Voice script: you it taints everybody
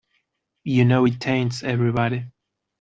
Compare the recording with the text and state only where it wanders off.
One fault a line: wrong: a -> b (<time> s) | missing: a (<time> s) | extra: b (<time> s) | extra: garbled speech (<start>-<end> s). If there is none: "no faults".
extra: know (0.8 s)